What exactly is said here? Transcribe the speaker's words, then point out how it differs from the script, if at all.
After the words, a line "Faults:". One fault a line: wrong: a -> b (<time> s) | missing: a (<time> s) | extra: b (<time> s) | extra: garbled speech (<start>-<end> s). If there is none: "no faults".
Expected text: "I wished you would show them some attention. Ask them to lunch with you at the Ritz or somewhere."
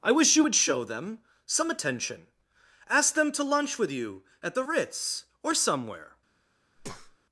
"I wish you would show them some attention. Ask them to lunch with you at the Ritz or somewhere."
Faults:
wrong: wished -> wish (0.1 s)